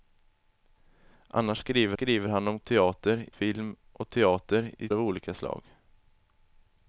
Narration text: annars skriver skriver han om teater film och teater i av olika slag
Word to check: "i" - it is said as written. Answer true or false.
true